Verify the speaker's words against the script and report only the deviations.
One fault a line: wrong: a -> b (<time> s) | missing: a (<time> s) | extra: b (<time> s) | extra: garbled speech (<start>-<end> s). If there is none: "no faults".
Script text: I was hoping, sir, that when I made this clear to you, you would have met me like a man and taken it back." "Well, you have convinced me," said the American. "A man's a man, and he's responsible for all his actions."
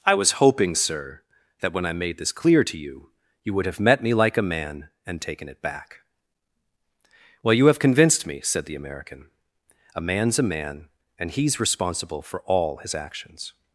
no faults